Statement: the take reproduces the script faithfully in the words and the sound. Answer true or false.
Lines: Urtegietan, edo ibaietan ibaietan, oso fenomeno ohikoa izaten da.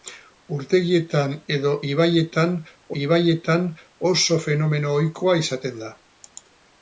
true